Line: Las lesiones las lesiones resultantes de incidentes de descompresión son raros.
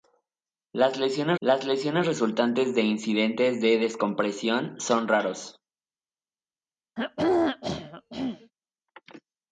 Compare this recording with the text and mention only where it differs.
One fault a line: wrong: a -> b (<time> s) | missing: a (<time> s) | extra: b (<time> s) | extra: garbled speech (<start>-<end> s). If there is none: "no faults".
no faults